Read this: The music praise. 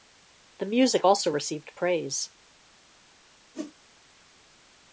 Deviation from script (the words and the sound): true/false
true